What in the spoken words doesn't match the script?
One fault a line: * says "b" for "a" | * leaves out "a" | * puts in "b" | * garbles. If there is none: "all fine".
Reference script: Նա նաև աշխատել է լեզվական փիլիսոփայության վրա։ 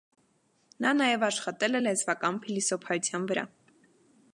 all fine